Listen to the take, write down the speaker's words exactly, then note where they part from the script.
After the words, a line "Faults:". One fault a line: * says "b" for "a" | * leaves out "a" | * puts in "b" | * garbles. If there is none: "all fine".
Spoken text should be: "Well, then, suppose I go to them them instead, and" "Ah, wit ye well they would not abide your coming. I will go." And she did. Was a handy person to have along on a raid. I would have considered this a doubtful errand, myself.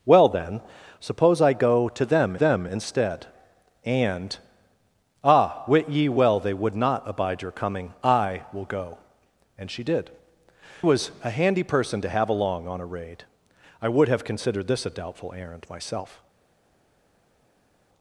"Well, then, suppose I go to them them instead, and" "Ah, wit ye well they would not abide your coming. I will go." And she did. Was a handy person to have along on a raid. I would have considered this a doubtful errand, myself.
Faults:
all fine